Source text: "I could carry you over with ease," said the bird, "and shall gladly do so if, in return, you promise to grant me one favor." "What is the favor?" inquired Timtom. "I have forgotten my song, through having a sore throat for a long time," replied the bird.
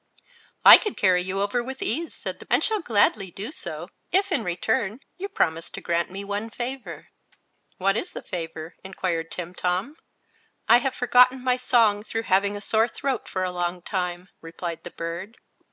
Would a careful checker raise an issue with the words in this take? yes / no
yes